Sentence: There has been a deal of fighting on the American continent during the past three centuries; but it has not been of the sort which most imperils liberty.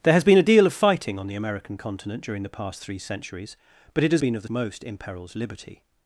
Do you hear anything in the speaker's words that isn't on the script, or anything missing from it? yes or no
yes